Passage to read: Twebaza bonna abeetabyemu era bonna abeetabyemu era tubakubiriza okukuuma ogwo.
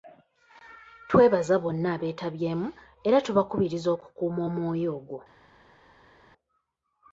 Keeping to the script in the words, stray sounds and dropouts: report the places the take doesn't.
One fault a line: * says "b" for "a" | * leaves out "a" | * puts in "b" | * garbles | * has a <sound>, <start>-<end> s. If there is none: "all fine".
* leaves out "bonna abeetabyemu era"
* puts in "omwoyo"